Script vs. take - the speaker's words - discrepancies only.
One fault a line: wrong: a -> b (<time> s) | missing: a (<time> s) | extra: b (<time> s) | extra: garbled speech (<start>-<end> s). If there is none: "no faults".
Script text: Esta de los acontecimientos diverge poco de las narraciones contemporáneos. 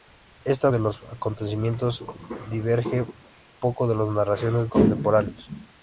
no faults